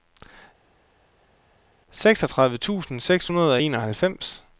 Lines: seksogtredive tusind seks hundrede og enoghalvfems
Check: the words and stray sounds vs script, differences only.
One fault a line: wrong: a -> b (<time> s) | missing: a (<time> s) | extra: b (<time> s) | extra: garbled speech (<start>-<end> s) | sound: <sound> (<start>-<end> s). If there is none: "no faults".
no faults